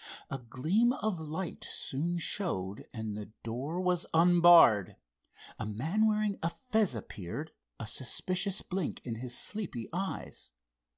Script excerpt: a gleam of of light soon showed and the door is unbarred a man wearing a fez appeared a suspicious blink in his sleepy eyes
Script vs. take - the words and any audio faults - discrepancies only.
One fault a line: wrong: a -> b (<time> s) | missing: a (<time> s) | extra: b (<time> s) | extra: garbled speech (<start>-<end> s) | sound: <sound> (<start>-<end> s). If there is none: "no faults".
missing: of (1.2 s)
wrong: is -> was (3.8 s)